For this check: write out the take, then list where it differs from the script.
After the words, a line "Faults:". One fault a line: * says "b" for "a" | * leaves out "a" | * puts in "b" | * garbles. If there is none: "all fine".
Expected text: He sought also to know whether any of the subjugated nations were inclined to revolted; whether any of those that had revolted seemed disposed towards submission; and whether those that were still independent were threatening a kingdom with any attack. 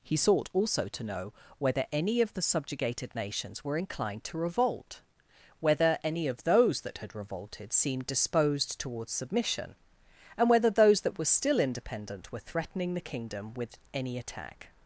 He sought also to know whether any of the subjugated nations were inclined to revolt; whether any of those that had revolted seemed disposed towards submission; and whether those that were still independent were threatening the kingdom with any attack.
Faults:
* says "revolt" for "revolted"
* says "the" for "a"